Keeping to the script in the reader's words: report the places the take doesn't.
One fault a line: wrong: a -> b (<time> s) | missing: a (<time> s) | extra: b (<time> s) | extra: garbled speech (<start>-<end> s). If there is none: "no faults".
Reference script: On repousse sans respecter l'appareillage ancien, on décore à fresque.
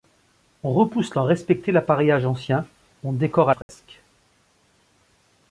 no faults